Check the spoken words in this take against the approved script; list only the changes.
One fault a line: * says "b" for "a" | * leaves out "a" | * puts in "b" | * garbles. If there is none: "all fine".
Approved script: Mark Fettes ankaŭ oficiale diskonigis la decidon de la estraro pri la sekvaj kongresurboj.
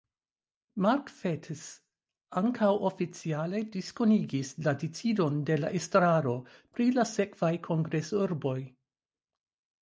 all fine